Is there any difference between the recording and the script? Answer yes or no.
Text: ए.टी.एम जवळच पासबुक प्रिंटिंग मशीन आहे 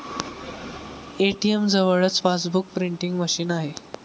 no